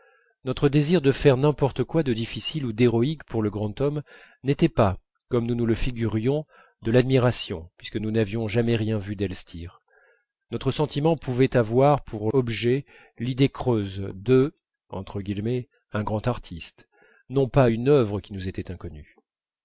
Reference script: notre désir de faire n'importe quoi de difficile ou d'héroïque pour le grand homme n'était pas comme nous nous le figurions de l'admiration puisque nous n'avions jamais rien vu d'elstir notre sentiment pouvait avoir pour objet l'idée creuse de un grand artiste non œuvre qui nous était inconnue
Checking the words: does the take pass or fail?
fail